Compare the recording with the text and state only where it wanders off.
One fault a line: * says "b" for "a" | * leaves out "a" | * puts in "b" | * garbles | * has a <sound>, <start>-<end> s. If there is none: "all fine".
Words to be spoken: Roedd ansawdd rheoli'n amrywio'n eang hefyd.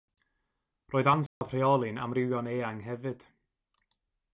* has a dropout, 1.3-1.4 s